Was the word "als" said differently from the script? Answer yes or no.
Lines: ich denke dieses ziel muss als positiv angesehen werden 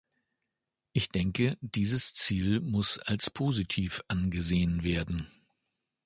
no